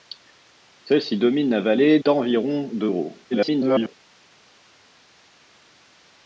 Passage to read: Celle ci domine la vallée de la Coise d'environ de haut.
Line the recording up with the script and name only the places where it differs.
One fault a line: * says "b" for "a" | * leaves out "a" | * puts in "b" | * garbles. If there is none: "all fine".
* leaves out "de la Coise"
* garbles